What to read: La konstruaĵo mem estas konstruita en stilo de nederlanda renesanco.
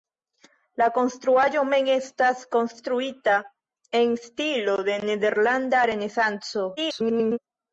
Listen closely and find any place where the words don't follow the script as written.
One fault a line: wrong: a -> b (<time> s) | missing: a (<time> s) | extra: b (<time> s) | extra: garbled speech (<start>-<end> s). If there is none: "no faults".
extra: garbled speech (6.8-7.4 s)